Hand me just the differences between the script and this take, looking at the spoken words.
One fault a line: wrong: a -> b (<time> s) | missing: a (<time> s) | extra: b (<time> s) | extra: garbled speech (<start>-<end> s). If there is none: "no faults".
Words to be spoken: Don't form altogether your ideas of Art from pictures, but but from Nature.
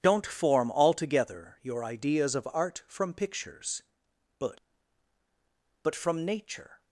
no faults